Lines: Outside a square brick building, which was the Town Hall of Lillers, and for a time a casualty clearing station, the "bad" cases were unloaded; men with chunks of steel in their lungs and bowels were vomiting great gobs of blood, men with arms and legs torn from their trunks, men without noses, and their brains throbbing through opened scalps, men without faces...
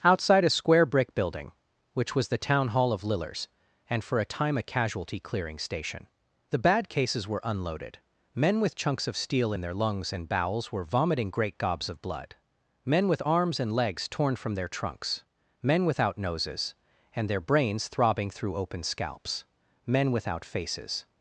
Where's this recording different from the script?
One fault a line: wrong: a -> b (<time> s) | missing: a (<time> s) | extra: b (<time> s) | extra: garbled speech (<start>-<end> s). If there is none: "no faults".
wrong: opened -> open (18.5 s)